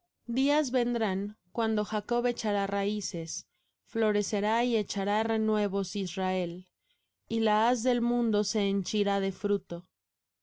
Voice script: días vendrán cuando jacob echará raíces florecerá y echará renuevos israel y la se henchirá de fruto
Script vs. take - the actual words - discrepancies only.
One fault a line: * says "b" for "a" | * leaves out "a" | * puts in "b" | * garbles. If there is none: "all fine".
* puts in "haz del mundo"